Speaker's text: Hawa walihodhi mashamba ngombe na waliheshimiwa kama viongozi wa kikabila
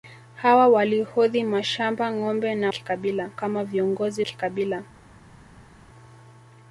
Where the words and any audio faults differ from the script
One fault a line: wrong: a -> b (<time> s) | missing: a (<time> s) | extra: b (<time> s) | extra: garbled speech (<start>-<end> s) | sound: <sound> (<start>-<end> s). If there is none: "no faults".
wrong: waliheshimiwa -> kikabila (2.7 s)
missing: wa (4.2 s)